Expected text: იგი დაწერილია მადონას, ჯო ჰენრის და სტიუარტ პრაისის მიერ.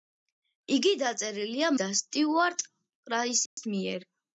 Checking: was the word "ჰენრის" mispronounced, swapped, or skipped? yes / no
yes